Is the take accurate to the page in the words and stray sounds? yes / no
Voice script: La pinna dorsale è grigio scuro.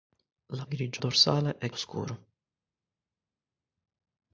no